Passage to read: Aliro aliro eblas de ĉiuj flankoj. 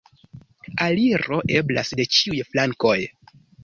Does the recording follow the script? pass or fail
fail